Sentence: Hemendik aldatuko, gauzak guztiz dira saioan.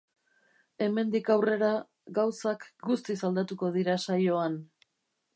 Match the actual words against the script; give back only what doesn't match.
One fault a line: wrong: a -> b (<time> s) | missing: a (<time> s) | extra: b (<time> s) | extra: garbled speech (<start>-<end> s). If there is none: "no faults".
wrong: aldatuko -> aurrera (1.3 s)
extra: aldatuko (3.3 s)